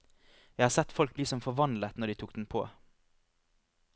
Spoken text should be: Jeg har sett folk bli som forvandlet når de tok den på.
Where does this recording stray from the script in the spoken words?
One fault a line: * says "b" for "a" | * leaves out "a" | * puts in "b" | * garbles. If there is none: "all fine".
all fine